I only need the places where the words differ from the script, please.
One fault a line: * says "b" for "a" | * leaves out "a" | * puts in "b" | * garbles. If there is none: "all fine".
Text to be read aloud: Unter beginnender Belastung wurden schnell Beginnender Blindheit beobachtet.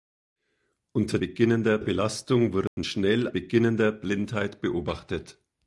all fine